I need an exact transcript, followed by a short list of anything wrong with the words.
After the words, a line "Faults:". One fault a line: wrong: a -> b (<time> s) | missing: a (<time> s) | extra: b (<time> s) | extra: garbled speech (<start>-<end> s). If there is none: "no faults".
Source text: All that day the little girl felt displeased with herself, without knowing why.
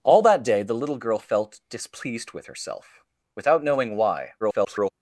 All that day the little girl felt displeased with herself, without knowing why. [garbled]
Faults:
extra: garbled speech (4.4-4.9 s)